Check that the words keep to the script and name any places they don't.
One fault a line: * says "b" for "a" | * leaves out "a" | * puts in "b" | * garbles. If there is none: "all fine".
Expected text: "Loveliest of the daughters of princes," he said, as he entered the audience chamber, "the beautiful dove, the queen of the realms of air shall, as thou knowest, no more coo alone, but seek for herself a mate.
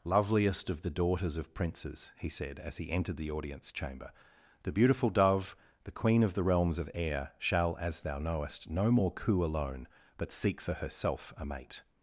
all fine